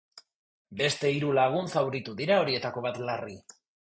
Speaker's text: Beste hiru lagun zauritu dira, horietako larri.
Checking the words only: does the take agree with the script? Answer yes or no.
no